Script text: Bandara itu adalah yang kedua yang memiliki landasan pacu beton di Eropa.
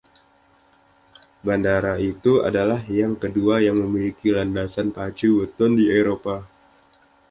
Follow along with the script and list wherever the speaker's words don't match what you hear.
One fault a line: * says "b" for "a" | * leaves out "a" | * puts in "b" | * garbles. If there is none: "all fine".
all fine